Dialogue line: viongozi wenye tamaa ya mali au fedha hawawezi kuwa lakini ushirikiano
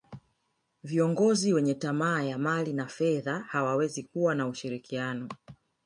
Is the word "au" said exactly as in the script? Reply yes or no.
no